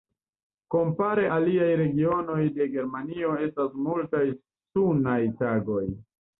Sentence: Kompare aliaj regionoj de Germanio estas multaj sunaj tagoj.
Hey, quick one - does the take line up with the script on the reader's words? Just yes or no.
yes